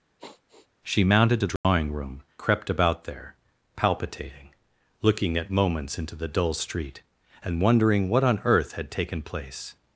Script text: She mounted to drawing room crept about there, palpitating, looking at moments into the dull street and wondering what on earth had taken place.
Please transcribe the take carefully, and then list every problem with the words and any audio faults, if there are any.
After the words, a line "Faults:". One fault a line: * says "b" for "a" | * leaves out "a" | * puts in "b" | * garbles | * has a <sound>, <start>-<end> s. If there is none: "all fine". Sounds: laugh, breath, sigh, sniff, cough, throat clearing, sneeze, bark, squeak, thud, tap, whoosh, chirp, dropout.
She mounted to drawing room crept about there, palpitating, looking at moments into the dull street and wondering what on earth had taken place.
Faults:
* has a sigh, 0.2-0.7 s
* has a dropout, 1.6-1.6 s